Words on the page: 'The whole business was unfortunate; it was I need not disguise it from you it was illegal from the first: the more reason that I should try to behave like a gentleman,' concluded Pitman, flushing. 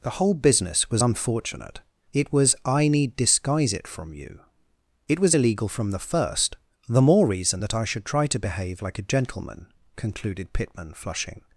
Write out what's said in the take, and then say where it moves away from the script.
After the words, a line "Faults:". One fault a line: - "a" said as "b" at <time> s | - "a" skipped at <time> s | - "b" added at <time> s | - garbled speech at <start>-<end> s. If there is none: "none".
'The whole business was unfortunate; it was I need disguise it from you it was illegal from the first: the more reason that I should try to behave like a gentleman,' concluded Pitman, flushing.
Faults:
- "not" skipped at 3.2 s